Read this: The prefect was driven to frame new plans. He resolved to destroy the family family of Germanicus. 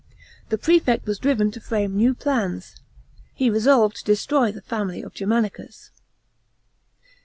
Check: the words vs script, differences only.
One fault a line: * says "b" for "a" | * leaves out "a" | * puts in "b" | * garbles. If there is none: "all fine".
* leaves out "family"